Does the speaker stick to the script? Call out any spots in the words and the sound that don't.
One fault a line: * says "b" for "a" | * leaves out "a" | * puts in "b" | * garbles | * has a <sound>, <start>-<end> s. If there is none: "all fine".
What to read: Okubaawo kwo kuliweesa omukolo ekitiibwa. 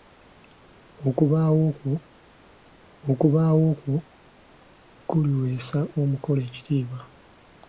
* puts in "okubaawo kwo"